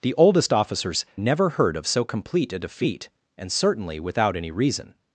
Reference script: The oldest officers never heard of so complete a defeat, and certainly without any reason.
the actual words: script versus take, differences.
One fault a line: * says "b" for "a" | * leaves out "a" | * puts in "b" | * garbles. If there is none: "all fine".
all fine